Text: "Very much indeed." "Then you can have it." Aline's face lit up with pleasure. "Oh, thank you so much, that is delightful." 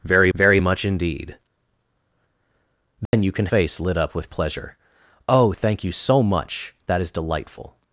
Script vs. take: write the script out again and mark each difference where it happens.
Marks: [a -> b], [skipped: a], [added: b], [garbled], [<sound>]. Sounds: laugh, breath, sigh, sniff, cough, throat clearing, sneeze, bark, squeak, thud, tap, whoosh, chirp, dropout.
"Very [added: very] much indeed." "Then [dropout] you can [skipped: have it." Aline's] face lit up with pleasure. "Oh, thank you so much, that is delightful."